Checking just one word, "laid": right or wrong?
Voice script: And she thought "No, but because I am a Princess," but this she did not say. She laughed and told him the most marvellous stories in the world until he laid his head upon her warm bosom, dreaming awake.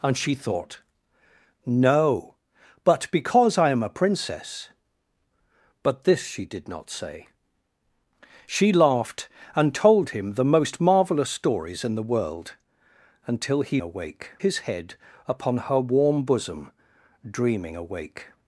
wrong